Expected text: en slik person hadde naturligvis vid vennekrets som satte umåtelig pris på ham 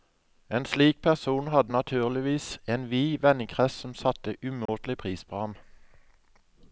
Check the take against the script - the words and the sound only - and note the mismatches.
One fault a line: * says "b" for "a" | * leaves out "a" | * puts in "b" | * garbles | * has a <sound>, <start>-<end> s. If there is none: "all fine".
* puts in "en"
* has a dropout, 4.7-4.7 s